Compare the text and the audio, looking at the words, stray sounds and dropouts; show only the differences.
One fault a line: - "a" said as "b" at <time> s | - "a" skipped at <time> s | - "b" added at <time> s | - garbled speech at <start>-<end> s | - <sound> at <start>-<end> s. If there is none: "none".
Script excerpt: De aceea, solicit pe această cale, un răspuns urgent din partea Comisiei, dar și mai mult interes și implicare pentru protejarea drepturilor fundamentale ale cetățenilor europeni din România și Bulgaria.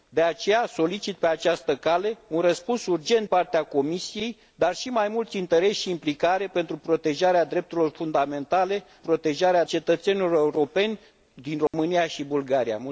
- "din" skipped at 3.3 s
- "ale" said as "protejarea" at 9.0 s
- dropout at 11.7-11.7 s